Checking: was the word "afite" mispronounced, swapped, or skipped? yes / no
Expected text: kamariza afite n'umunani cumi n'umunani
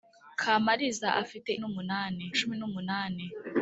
no